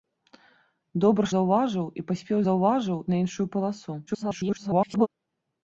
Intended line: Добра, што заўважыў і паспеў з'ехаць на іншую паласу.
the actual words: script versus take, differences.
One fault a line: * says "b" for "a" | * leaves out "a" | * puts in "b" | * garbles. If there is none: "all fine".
* leaves out "што"
* says "заўважыў" for "з'ехаць"
* garbles